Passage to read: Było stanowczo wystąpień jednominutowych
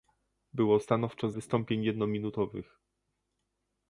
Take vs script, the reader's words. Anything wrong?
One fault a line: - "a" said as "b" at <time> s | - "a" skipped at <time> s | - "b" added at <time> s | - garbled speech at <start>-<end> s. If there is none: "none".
none